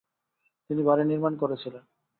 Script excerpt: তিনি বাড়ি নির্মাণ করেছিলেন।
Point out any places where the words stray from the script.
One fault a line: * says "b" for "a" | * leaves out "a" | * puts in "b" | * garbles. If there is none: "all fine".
all fine